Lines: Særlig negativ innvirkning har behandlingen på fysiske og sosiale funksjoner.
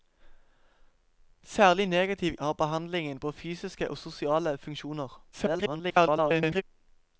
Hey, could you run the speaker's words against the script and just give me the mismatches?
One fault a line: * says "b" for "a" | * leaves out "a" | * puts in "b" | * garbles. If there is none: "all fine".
* leaves out "innvirkning"
* garbles